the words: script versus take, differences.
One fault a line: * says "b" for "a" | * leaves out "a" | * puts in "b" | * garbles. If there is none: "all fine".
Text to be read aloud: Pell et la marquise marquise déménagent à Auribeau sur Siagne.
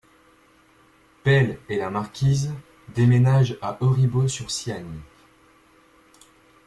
* leaves out "marquise"